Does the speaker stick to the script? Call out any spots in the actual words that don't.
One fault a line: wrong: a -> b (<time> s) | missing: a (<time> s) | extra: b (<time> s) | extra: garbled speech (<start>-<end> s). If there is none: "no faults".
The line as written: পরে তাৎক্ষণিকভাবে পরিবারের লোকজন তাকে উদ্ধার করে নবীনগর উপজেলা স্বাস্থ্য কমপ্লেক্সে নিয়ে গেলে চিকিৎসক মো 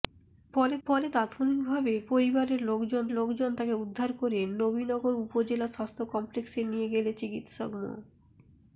extra: পরে (0.9 s)
extra: লোকজন (3.1 s)